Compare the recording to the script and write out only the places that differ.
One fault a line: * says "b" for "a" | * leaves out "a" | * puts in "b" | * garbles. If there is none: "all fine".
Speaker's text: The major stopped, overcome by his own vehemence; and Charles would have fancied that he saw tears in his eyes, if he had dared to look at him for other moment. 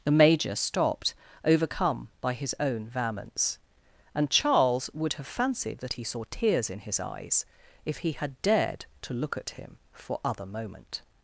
all fine